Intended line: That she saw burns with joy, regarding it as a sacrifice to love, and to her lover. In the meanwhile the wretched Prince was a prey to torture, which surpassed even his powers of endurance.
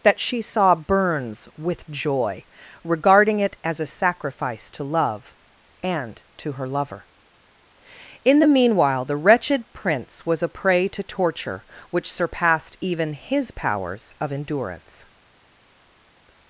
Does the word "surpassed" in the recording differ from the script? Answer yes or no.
no